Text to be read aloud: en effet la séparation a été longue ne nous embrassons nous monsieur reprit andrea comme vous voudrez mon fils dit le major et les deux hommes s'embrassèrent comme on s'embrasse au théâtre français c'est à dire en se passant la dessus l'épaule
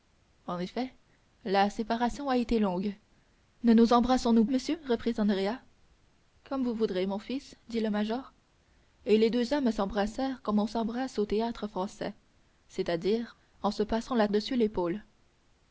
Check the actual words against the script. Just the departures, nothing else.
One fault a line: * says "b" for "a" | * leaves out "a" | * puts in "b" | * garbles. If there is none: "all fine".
all fine